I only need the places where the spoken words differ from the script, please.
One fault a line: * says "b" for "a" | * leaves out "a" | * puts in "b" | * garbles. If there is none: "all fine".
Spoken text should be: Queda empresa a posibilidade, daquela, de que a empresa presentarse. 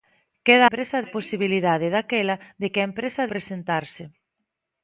all fine